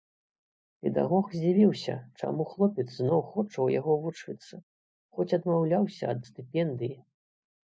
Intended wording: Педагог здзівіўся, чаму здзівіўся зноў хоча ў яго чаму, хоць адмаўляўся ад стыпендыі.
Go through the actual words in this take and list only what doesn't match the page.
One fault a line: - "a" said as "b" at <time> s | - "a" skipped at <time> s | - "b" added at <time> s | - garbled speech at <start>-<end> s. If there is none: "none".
- "здзівіўся" said as "хлопец" at 2.5 s
- "чаму" said as "вучыцца" at 4.1 s